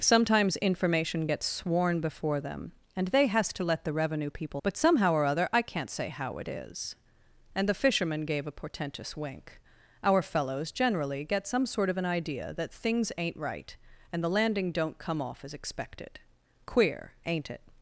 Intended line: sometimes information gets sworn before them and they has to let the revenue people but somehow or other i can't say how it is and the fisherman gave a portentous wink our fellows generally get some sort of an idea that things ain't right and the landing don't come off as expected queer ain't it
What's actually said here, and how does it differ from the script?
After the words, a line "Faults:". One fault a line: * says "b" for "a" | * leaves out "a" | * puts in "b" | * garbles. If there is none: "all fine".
sometimes information gets sworn before them and they has to let the revenue people but somehow or other i can't say how it is and the fisherman gave a portentous wink our fellows generally get some sort of an idea that things ain't right and the landing don't come off as expected queer ain't it
Faults:
all fine